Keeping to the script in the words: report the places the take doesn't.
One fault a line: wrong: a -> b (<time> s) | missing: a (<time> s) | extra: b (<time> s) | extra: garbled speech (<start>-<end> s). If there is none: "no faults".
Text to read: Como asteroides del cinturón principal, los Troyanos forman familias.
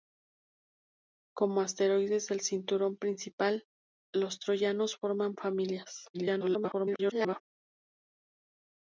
extra: garbled speech (6.1-7.4 s)